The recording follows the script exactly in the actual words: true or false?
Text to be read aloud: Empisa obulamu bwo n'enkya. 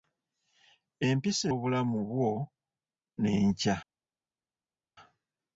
true